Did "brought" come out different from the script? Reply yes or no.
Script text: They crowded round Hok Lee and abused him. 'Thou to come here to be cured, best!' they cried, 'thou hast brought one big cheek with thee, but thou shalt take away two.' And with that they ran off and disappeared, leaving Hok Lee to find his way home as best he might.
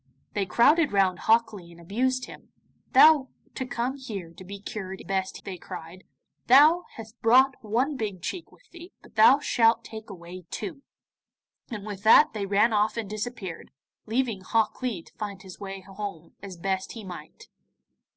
no